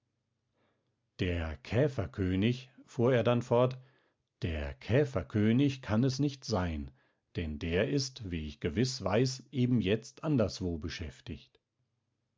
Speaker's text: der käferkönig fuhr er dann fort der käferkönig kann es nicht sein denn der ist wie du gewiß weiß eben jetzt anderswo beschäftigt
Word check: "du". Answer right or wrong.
wrong